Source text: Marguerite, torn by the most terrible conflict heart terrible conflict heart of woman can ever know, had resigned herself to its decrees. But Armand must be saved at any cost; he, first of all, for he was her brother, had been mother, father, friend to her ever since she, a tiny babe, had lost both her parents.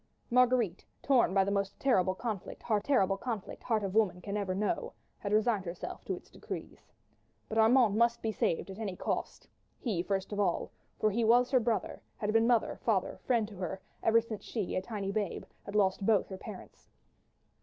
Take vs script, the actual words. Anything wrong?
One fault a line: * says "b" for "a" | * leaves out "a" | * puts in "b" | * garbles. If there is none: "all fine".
all fine